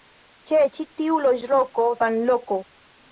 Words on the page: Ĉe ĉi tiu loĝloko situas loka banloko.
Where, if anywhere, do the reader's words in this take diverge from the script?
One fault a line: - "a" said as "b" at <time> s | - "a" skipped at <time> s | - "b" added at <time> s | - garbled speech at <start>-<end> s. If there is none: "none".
- "situas loka" skipped at 1.9 s